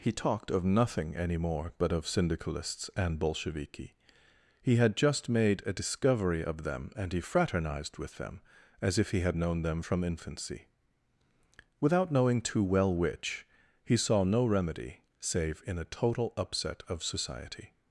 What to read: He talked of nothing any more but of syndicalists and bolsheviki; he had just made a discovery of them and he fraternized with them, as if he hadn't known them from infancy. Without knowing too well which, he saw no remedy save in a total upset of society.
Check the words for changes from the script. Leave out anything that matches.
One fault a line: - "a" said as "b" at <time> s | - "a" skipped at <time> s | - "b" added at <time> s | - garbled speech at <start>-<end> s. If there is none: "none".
- "hadn't" said as "had" at 9.2 s